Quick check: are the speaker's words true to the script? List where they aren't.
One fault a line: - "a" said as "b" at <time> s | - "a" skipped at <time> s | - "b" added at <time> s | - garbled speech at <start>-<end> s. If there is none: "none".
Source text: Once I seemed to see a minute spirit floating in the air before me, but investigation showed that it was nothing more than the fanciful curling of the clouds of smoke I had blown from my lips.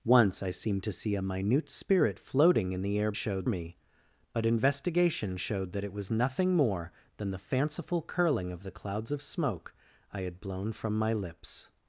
- "before" said as "showed" at 3.1 s